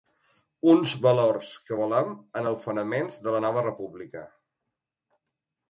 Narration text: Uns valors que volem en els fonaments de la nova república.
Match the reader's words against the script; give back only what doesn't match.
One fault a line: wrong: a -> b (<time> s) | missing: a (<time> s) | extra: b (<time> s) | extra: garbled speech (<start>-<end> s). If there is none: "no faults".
no faults